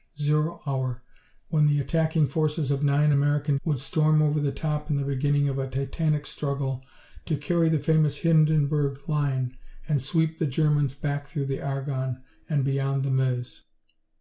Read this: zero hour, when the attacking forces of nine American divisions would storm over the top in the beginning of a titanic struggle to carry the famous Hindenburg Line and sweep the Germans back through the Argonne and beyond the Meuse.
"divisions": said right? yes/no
no